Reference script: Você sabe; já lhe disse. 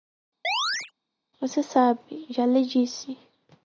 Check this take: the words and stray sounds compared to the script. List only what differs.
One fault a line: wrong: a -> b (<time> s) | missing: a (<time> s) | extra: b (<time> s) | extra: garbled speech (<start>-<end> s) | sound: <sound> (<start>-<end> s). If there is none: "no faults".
sound: chirp (0.4-0.9 s)